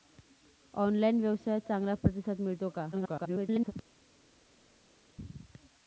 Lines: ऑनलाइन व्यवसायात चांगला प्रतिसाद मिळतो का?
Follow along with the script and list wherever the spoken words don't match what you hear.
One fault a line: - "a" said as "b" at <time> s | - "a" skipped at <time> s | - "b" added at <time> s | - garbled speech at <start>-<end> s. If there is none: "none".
- garbled speech at 2.9-3.7 s